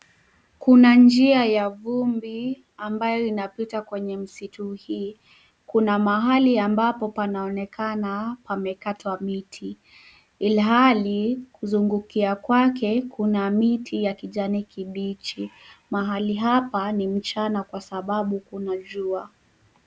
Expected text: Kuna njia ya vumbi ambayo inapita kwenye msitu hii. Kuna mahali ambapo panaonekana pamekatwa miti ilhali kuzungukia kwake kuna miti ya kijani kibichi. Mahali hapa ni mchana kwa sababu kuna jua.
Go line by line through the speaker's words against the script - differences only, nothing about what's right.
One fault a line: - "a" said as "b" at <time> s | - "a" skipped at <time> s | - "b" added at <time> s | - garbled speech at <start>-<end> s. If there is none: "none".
none